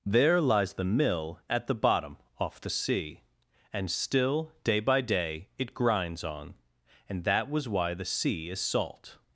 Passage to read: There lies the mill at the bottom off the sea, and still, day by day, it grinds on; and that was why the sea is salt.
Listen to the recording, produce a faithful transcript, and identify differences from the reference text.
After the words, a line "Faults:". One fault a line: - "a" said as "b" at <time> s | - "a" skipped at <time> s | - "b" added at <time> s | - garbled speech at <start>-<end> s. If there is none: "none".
There lies the mill at the bottom off the sea, and still, day by day, it grinds on; and that was why the sea is salt.
Faults:
none